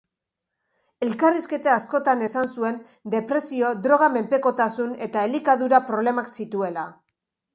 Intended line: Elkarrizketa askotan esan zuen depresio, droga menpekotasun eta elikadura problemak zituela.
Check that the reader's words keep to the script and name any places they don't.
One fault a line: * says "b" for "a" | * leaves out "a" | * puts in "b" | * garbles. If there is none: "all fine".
all fine